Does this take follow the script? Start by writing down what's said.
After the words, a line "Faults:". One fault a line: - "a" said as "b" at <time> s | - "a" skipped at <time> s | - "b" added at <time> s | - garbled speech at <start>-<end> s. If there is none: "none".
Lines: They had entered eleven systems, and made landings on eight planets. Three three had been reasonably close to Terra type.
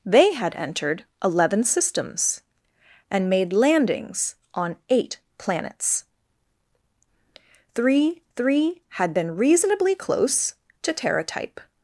They had entered eleven systems, and made landings on eight planets. Three three had been reasonably close to Terra type.
Faults:
none